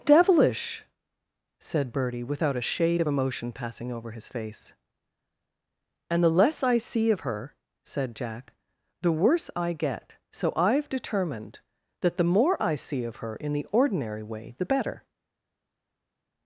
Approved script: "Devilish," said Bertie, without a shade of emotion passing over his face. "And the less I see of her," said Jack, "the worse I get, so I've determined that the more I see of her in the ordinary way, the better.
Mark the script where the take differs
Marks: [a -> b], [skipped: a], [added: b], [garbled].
"Devilish," said Bertie, without a shade of emotion passing over his face. "And the less I see of her," said Jack, "the worse I get, so I've determined that the more I see of her in the ordinary way, the better.